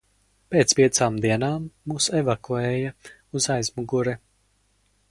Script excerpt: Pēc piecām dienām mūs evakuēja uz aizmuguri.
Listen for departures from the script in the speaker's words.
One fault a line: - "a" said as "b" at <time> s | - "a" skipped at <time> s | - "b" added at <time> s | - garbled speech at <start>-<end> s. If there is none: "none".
none